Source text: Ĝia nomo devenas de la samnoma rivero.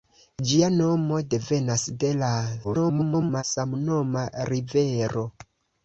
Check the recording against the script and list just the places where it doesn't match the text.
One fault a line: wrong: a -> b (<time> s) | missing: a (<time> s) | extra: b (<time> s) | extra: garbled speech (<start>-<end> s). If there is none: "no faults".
extra: garbled speech (2.6-3.4 s)